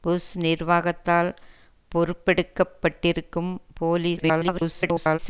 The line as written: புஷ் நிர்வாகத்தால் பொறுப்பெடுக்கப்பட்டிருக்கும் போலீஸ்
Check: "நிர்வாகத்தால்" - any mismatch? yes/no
no